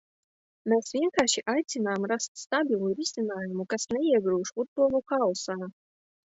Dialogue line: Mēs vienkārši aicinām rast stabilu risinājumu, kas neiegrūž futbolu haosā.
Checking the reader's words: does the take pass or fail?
pass